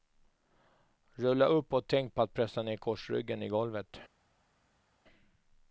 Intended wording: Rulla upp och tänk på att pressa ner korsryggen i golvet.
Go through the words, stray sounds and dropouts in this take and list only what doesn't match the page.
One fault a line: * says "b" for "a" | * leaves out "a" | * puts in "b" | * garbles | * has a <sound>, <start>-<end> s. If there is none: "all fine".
all fine